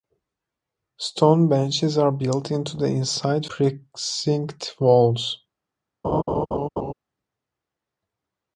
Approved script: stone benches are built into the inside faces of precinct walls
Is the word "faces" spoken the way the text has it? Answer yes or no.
no